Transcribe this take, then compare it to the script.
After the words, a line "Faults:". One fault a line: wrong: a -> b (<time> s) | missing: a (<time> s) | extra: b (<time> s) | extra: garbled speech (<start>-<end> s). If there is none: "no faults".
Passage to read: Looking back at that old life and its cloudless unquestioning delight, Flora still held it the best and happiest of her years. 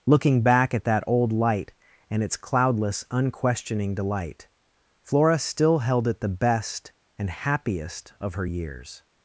Looking back at that old light and its cloudless unquestioning delight, Flora still held it the best and happiest of her years.
Faults:
wrong: life -> light (1.3 s)